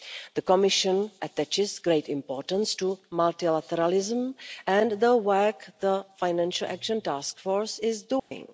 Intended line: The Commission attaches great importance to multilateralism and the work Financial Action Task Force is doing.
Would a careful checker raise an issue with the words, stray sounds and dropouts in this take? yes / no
yes